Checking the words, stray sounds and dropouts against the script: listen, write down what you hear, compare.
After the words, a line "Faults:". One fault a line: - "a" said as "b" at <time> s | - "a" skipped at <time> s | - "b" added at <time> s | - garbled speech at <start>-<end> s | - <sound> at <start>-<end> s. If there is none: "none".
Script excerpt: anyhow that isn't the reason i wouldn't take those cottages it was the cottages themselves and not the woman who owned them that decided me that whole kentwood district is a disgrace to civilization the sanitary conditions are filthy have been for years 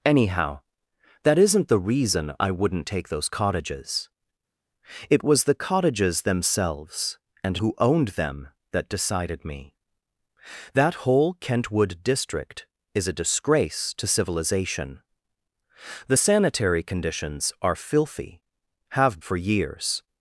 anyhow that isn't the reason i wouldn't take those cottages it was the cottages themselves and who owned them that decided me that whole kentwood district is a disgrace to civilization the sanitary conditions are filthy have for years
Faults:
- "not the woman" skipped at 7.6 s
- "been" skipped at 19.2 s